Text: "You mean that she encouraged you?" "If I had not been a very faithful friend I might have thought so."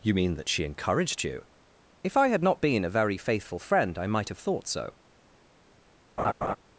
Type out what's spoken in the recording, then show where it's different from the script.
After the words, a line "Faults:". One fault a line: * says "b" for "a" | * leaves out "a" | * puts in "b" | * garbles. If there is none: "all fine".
"You mean that she encouraged you?" "If I had not been a very faithful friend I might have thought so."
Faults:
all fine